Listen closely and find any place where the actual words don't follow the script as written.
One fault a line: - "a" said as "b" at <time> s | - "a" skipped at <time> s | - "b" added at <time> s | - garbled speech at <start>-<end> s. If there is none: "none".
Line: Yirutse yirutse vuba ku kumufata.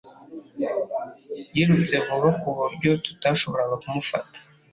- "yirutse" skipped at 1.9 s
- "buryo tutashoboraga" added at 2.6 s